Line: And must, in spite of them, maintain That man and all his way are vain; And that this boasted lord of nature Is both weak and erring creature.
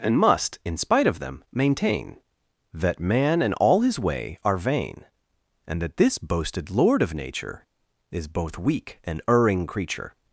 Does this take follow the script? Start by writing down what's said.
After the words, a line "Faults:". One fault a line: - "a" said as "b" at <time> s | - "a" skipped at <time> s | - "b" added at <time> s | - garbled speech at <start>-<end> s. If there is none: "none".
And must, in spite of them, maintain That man and all his way are vain; And that this boasted lord of nature Is both weak and erring creature.
Faults:
none